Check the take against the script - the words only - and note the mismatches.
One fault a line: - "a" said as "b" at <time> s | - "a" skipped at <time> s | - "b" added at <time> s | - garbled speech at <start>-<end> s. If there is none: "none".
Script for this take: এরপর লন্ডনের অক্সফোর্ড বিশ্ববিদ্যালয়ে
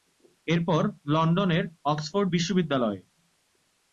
none